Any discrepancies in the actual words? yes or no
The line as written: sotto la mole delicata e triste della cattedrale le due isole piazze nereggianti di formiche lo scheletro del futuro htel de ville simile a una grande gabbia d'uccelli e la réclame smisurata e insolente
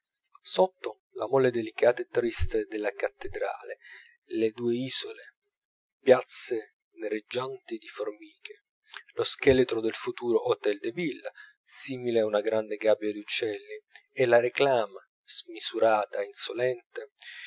no